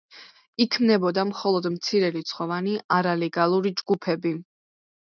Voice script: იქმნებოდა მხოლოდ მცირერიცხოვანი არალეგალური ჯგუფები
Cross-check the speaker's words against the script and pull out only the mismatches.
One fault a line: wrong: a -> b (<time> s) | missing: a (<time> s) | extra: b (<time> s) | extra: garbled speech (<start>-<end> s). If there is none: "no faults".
no faults